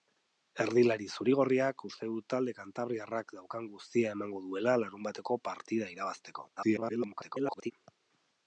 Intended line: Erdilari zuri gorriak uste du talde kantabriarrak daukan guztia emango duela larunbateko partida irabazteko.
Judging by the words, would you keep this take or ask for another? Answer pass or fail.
fail